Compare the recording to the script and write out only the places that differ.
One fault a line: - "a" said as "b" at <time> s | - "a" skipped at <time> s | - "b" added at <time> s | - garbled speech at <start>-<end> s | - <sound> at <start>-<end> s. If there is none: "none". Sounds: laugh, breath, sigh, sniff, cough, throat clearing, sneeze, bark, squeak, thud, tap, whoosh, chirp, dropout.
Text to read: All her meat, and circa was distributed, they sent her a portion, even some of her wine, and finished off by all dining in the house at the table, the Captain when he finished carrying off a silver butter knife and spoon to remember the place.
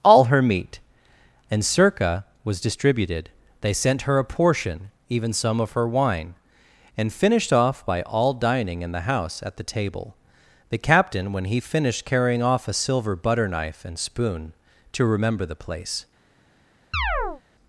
- chirp at 16.9-17.4 s